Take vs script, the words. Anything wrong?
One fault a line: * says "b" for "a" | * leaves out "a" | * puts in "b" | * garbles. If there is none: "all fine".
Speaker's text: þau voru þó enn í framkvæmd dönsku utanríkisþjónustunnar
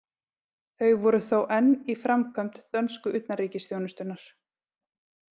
all fine